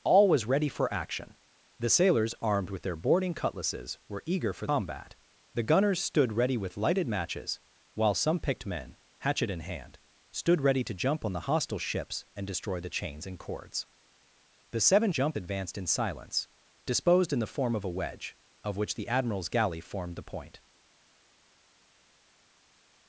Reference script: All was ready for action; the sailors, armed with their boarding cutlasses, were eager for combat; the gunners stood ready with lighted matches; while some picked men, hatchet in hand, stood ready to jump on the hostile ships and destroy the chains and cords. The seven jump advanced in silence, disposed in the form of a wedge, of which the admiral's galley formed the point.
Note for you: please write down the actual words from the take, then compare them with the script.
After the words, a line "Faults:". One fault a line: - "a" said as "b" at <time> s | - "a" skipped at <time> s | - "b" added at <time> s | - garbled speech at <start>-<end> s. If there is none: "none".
All was ready for action; the sailors, armed with their boarding cutlasses, were eager for combat; the gunners stood ready with lighted matches; while some picked men, hatchet in hand, stood ready to jump on the hostile ships and destroy the chains and cords. The seven jump advanced in silence, disposed in the form of a wedge, of which the admiral's galley formed the point.
Faults:
none